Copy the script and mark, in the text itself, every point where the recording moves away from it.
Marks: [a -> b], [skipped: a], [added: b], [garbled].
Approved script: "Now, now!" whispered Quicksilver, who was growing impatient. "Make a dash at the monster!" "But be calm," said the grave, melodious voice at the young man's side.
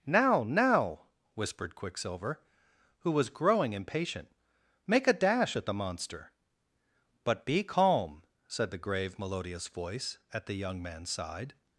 "Now, now!" whispered Quicksilver, who was growing impatient. "Make a dash at the monster!" "But be calm," said the grave, melodious voice at the young man's side.